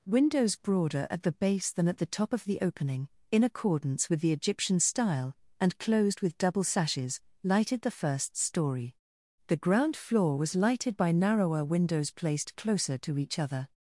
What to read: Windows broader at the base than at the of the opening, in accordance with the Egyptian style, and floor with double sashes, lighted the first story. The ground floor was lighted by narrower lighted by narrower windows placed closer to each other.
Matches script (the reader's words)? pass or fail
fail